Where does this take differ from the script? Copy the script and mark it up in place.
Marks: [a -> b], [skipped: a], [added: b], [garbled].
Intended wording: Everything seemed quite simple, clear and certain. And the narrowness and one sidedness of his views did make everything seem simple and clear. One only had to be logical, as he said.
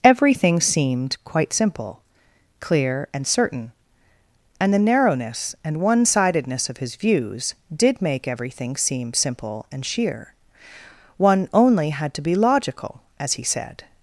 Everything seemed quite simple, clear and certain. And the narrowness and one sidedness of his views did make everything seem simple and [clear. -> sheer] One only had to be logical, as he said.